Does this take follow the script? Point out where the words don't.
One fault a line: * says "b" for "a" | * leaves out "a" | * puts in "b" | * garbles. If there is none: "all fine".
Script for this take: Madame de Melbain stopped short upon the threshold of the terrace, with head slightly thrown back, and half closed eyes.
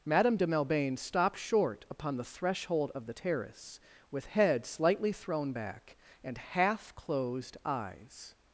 all fine